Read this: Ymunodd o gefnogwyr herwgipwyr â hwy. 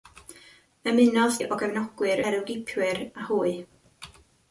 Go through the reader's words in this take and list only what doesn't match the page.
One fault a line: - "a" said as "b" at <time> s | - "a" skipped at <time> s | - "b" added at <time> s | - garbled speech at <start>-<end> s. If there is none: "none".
none